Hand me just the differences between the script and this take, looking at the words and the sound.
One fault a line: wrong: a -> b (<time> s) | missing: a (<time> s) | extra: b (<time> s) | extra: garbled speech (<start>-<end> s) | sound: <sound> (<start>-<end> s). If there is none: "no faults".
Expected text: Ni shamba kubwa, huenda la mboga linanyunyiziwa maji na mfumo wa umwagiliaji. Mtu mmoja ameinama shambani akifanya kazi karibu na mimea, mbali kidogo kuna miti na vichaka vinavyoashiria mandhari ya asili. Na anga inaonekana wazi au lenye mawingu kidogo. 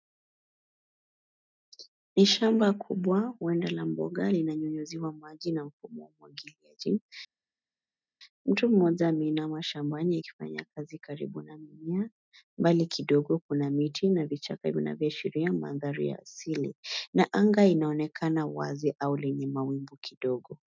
no faults